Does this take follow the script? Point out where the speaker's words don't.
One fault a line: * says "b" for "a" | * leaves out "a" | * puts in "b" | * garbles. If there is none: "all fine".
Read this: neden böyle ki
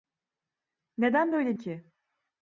all fine